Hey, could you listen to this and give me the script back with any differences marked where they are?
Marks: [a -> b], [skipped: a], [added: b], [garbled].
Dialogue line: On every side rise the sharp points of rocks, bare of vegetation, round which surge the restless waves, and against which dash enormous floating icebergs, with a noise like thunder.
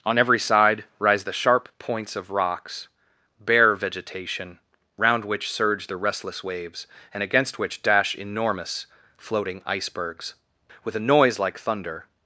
On every side rise the sharp points of rocks, bare [skipped: of] vegetation, round which surge the restless waves, and against which dash enormous floating icebergs, with a noise like thunder.